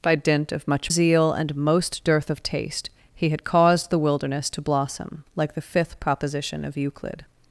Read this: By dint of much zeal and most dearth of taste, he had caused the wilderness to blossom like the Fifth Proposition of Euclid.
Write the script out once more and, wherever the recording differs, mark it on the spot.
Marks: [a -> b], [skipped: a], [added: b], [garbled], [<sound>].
By dint of much zeal and most dearth of taste, he had caused the wilderness to blossom like the Fifth Proposition of Euclid.